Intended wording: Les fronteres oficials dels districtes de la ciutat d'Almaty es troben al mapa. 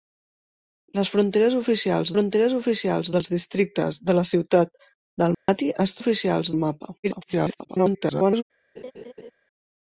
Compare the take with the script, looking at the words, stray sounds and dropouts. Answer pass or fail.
fail